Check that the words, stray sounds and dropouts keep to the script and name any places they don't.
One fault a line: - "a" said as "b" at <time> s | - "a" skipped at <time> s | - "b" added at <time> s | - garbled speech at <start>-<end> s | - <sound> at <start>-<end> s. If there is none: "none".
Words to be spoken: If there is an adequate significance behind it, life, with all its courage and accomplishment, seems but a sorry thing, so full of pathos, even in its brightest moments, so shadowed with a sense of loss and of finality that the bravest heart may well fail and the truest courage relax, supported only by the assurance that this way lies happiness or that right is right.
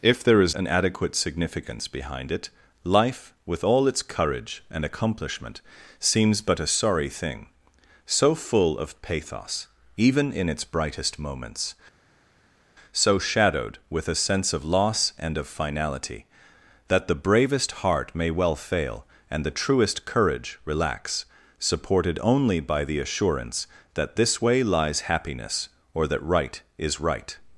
none